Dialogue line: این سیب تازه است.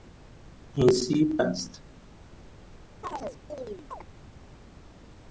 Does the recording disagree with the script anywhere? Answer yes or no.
yes